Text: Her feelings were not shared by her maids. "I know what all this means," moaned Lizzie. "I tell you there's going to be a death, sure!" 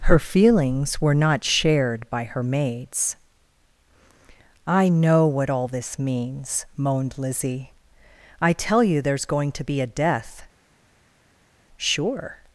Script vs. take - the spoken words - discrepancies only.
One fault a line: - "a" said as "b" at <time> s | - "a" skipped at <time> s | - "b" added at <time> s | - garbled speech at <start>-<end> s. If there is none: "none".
none